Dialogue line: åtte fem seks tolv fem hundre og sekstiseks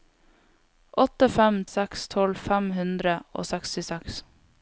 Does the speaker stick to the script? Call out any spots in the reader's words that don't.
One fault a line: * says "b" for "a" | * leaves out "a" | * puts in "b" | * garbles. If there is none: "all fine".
all fine